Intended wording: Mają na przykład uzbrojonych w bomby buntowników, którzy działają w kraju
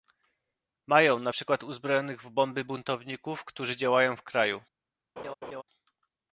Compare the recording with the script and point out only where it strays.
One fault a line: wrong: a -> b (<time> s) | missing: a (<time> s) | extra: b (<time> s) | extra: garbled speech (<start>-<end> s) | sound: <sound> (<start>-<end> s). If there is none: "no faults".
sound: laugh (5.2-5.6 s)